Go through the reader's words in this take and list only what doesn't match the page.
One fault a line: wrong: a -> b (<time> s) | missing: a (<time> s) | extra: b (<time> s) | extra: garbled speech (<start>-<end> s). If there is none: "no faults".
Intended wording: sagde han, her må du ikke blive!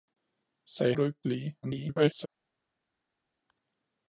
missing: han her må (0.9 s)
extra: garbled speech (1.6-2.3 s)